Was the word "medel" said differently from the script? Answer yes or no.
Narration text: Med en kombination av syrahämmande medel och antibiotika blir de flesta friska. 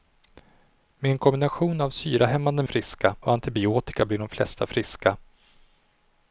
yes